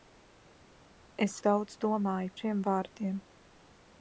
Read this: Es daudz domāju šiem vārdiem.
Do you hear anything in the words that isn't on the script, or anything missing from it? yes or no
no